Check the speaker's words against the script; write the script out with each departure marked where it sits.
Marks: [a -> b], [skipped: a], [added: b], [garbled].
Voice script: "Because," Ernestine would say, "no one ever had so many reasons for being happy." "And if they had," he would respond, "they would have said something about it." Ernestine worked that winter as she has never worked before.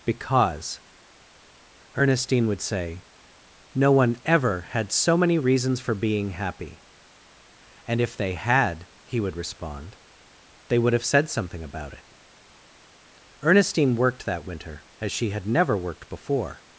"Because," Ernestine would say, "no one ever had so many reasons for being happy." "And if they had," he would respond, "they would have said something about it." Ernestine worked that winter as she [has -> had] never worked before.